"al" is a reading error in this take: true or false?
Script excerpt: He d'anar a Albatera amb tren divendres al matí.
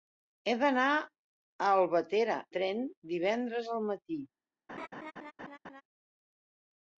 false